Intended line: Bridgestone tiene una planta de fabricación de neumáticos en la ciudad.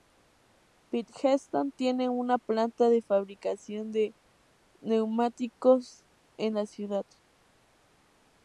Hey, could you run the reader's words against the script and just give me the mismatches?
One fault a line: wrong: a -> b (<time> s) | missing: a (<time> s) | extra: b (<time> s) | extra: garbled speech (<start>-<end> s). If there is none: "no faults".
no faults